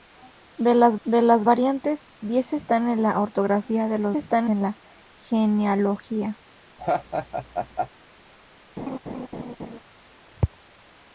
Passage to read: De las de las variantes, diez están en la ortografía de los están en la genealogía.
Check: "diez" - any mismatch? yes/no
no